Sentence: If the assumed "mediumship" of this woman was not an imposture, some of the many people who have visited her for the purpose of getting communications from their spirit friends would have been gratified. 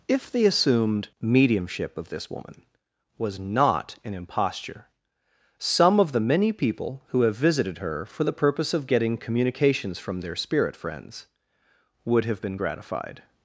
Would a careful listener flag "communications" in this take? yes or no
no